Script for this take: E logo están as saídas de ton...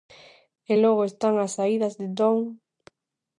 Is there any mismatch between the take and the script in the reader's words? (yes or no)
no